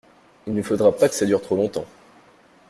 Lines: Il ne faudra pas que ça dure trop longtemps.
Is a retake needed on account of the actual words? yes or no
no